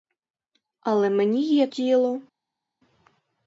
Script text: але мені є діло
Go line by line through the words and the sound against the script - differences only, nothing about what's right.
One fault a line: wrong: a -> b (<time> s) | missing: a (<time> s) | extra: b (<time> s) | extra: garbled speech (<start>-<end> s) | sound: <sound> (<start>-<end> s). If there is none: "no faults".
no faults